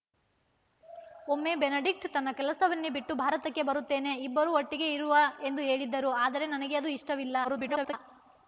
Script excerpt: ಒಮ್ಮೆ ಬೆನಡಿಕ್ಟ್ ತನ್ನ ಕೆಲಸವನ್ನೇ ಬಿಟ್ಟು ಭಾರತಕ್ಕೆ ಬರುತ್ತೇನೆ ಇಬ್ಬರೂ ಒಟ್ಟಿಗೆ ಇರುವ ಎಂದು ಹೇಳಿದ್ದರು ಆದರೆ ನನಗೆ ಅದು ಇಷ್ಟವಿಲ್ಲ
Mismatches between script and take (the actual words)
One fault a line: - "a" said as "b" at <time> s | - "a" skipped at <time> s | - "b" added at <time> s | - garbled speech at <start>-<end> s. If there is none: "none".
- garbled speech at 7.4-7.9 s